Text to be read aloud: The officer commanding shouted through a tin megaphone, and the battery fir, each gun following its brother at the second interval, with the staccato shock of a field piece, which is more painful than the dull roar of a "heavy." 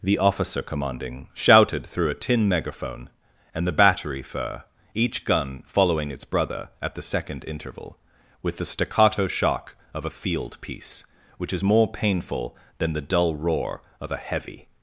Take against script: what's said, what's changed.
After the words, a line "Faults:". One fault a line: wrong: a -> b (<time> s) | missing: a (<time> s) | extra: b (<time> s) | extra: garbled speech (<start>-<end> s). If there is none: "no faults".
The officer commanding shouted through a tin megaphone, and the battery fir, each gun following its brother at the second interval, with the staccato shock of a field piece, which is more painful than the dull roar of a "heavy."
Faults:
no faults